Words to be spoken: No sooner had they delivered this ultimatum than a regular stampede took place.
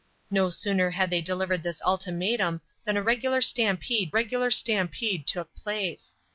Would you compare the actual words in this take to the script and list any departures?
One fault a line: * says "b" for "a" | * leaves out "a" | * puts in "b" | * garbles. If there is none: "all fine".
* puts in "regular stampede"